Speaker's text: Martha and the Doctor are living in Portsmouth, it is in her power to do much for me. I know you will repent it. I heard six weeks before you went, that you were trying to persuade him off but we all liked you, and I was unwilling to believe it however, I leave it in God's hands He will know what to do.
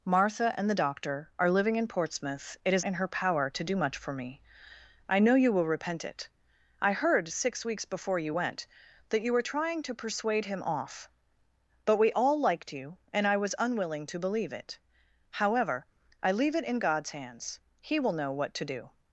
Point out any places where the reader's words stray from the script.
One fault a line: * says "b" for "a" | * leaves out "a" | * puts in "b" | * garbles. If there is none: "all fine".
all fine